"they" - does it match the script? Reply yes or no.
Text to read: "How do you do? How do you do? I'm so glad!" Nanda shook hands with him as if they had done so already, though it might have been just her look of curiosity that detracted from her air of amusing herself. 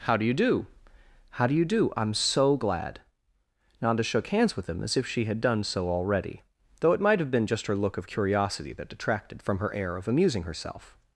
no